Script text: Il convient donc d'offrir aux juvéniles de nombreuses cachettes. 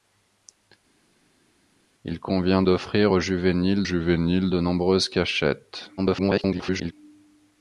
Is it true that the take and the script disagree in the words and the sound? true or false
true